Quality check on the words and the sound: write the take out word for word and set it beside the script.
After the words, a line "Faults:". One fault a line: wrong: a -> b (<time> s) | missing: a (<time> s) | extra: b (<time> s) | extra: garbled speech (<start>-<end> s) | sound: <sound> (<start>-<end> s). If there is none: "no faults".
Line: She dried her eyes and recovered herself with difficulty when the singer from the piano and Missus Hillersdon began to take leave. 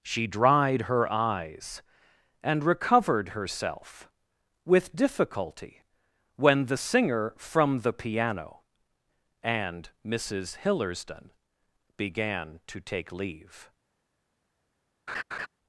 She dried her eyes and recovered herself with difficulty when the singer from the piano and Missus Hillersdon began to take leave.
Faults:
sound: laugh (15.1-15.5 s)